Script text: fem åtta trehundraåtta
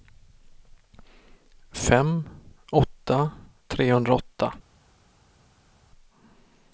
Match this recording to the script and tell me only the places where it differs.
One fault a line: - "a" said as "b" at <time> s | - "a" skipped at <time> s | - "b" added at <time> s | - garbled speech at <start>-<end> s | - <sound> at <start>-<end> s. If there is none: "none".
none